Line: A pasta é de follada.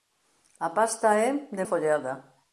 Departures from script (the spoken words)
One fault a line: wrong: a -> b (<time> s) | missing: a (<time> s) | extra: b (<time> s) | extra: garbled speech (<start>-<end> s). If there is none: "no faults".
no faults